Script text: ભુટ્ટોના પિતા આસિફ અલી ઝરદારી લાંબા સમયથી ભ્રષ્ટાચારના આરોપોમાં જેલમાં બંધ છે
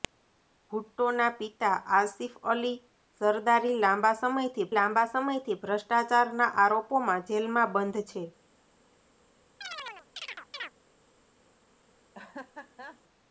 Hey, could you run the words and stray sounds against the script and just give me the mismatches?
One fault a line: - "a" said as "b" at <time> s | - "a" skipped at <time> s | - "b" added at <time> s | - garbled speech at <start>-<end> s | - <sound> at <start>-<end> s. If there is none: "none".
- "લાંબા સમયથી" added at 4.7 s
- chirp at 9.6-10.7 s
- laugh at 12.1-13.0 s